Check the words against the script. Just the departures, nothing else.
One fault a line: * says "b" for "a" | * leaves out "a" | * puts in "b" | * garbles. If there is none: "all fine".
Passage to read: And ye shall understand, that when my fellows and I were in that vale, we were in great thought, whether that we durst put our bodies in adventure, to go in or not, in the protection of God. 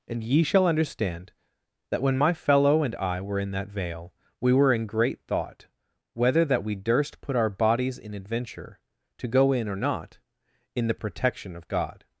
* says "fellow" for "fellows"